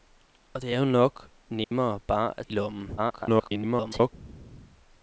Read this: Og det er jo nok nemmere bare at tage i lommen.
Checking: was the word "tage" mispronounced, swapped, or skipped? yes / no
yes